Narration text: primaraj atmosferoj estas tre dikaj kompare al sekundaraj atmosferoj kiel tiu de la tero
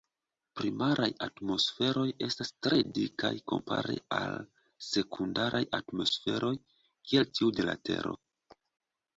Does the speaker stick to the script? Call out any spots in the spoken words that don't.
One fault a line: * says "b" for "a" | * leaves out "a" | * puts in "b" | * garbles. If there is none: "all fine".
all fine